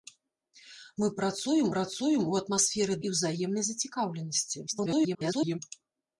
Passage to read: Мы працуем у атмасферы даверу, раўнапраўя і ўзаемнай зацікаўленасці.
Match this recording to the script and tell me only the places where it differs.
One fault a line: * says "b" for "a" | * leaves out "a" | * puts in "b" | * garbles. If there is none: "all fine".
* puts in "працуем"
* leaves out "даверу раўнапраўя"
* garbles